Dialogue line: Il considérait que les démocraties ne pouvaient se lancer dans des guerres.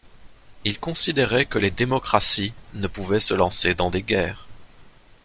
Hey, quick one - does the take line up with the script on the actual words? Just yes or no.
yes